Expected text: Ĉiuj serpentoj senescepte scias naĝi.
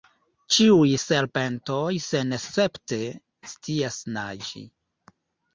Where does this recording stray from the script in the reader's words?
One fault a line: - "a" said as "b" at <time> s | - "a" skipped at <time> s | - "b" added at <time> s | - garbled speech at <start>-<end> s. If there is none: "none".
none